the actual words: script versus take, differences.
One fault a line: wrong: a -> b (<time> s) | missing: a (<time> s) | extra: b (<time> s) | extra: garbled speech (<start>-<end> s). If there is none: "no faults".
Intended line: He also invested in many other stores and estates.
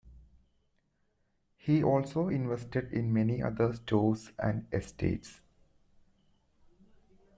no faults